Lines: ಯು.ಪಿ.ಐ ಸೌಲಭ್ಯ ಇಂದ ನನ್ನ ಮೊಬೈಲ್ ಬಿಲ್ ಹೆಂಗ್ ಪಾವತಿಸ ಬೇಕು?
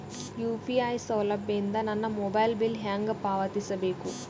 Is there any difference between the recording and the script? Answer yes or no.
no